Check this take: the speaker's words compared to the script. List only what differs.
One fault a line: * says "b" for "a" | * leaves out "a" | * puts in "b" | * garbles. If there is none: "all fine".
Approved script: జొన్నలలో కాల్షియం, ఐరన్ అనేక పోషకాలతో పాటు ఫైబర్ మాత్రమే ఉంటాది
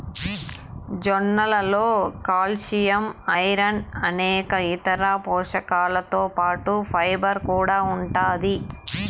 * puts in "ఇతర"
* says "కూడా" for "మాత్రమే"